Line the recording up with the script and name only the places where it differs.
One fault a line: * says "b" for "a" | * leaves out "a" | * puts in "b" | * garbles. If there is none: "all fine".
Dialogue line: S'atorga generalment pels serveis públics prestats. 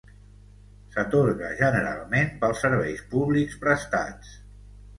all fine